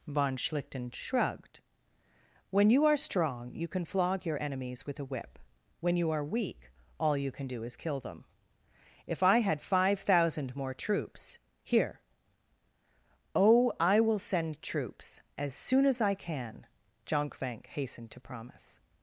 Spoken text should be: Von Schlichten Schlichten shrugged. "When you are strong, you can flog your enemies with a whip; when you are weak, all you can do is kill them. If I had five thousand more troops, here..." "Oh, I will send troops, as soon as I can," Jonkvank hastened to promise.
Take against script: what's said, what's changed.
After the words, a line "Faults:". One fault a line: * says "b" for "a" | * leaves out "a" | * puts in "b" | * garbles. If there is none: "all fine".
Von Schlichten shrugged. "When you are strong, you can flog your enemies with a whip; when you are weak, all you can do is kill them. If I had five thousand more troops, here..." "Oh, I will send troops, as soon as I can," Jonkvank hastened to promise.
Faults:
* leaves out "Schlichten"